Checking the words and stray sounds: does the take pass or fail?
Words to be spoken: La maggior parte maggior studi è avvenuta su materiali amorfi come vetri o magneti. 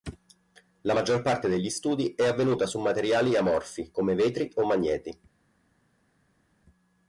fail